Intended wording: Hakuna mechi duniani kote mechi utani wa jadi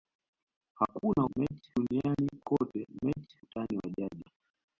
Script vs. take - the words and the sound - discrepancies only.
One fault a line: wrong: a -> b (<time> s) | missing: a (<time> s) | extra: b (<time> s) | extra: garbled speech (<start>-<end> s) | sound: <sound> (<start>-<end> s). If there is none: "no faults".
no faults